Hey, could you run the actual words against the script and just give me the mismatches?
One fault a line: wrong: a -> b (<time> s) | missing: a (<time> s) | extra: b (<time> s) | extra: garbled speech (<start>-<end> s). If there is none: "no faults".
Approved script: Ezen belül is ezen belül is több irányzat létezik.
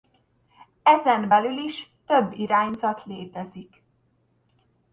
missing: ezen belül is (1.9 s)